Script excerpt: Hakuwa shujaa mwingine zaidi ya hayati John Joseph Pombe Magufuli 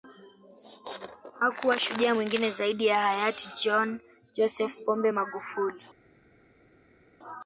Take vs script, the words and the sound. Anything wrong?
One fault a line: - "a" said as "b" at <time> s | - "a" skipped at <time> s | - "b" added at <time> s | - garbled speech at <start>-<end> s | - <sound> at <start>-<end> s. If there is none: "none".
none